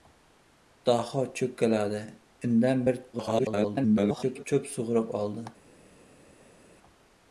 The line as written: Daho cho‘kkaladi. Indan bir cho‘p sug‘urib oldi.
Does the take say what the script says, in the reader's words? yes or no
no